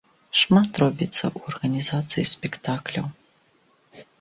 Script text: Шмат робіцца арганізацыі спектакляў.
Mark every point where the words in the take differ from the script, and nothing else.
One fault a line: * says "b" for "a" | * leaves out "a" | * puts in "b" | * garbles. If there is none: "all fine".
* puts in "ў"